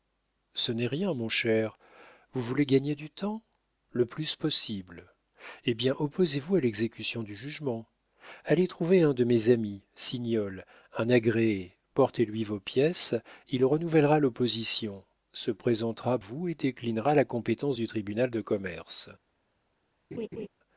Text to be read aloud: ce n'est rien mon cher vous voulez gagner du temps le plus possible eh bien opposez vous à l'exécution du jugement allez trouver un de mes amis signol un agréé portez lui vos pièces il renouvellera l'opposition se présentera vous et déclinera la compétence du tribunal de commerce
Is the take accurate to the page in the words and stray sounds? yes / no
no